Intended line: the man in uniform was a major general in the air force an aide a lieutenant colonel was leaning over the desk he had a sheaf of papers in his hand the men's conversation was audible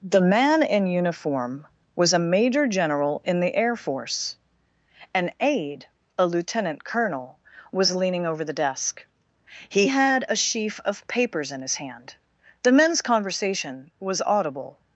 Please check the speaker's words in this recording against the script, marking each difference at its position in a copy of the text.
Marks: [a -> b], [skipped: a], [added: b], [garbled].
the man in uniform was a major general in the air force an aide a lieutenant colonel was leaning over the desk he had a sheaf of papers in his hand the men's conversation was audible